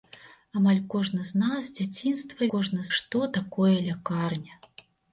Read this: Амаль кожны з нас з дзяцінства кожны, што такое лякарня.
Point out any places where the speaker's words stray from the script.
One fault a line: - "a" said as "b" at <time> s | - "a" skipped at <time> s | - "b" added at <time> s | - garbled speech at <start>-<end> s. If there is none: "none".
none